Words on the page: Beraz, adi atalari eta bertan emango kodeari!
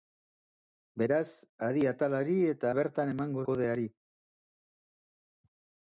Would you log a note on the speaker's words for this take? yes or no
no